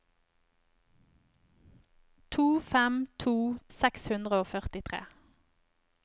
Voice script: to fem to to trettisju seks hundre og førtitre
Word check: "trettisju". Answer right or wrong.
wrong